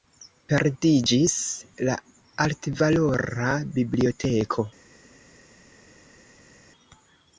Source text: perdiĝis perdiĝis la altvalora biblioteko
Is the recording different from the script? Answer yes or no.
yes